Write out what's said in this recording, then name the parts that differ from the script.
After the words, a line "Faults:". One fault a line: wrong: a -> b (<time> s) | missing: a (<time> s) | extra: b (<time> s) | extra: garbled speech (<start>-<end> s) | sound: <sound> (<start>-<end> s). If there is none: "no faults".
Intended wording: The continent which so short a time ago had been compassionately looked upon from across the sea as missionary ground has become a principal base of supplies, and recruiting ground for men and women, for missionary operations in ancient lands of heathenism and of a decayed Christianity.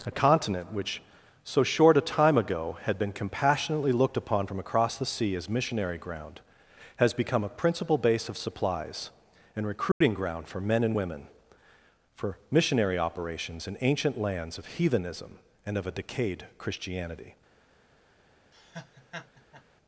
A continent which so short a time ago had been compassionately looked upon from across the sea as missionary ground has become a principal base of supplies, and recruiting ground for men and women, for missionary operations in ancient lands of heathenism and of a decayed Christianity.
Faults:
wrong: The -> A (0.1 s)
sound: dropout (9.9-10.0 s)
sound: laugh (18.5-19.6 s)